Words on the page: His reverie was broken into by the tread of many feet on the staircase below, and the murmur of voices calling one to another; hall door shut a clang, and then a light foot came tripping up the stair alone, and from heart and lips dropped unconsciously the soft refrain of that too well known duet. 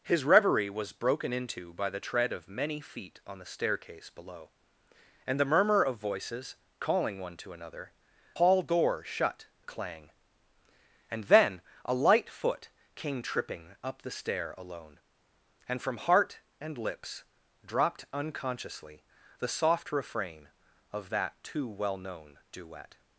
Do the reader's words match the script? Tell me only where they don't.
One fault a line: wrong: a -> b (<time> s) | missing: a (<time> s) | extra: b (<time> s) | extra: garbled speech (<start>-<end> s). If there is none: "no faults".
no faults